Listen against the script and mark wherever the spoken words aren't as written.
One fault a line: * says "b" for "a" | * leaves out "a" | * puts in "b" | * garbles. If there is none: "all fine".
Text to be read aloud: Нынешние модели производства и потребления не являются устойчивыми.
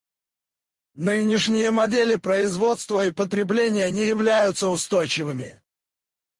all fine